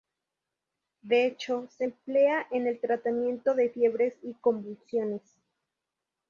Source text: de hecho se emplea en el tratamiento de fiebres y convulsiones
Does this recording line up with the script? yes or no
yes